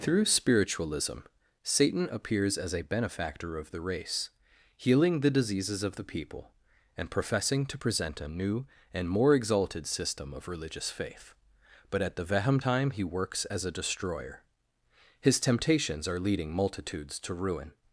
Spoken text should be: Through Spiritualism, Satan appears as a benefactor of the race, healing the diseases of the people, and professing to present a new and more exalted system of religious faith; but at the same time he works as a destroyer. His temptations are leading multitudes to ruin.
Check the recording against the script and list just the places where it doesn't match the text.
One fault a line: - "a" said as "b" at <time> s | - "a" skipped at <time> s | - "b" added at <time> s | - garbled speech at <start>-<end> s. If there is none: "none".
- "same" said as "vehem" at 12.3 s